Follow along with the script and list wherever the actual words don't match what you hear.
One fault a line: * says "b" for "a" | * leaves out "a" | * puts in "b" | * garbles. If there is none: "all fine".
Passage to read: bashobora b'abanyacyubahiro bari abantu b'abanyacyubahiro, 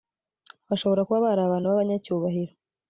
* says "kuba" for "b'abanyacyubahiro"